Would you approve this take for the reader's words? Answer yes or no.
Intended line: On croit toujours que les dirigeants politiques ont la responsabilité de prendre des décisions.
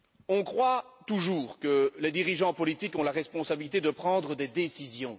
yes